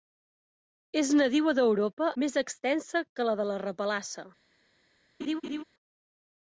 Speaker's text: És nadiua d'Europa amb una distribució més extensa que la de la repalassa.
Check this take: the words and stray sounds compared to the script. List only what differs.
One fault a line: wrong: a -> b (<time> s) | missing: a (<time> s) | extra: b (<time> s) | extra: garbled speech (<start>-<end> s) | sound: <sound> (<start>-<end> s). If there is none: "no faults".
missing: amb una distribució (2.1 s)
sound: laugh (5.2-5.6 s)